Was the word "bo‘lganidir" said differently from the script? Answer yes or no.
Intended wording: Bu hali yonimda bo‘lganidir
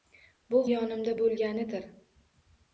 no